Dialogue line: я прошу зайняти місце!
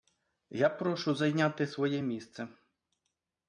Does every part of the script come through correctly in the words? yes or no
no